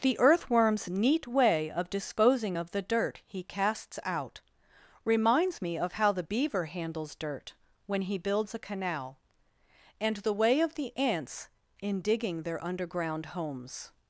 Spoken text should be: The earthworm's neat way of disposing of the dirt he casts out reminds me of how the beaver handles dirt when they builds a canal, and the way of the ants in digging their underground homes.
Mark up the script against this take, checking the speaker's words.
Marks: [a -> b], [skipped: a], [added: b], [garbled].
The earthworm's neat way of disposing of the dirt he casts out reminds me of how the beaver handles dirt when [they -> he] builds a canal, and the way of the ants in digging their underground homes.